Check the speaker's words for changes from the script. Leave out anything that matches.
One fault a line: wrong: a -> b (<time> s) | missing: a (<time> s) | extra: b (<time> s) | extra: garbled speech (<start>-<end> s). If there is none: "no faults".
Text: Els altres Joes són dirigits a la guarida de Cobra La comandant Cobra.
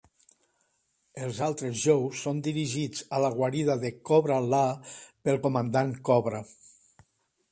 extra: pel (5.3 s)